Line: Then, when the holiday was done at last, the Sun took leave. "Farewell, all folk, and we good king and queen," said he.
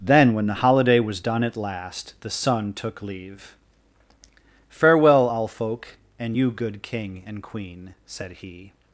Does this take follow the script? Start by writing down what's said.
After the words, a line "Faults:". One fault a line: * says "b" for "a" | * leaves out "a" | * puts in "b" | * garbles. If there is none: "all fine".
Then, when the holiday was done at last, the Sun took leave. "Farewell, all folk, and you good king and queen," said he.
Faults:
* says "you" for "we"